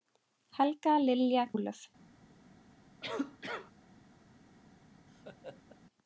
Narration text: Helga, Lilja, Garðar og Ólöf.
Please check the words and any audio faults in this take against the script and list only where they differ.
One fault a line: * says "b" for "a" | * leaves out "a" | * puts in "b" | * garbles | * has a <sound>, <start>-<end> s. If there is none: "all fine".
* leaves out "Garðar og"
* has a cough, 3.0-3.7 s
* has a laugh, 5.1-5.8 s